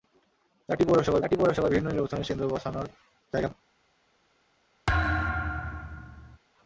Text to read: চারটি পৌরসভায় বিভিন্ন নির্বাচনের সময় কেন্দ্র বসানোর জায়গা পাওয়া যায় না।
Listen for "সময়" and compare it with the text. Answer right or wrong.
wrong